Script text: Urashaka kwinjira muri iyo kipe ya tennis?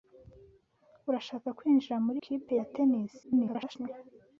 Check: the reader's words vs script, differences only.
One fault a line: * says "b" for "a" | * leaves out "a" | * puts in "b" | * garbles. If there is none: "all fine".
* leaves out "iyo"
* garbles